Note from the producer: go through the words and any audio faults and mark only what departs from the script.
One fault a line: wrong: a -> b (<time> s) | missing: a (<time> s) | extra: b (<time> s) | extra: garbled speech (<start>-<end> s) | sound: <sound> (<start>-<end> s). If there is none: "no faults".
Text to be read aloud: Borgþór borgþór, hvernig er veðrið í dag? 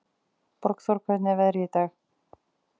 missing: borgþór (1.0 s)